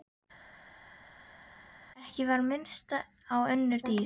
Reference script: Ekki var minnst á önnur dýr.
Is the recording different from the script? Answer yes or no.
no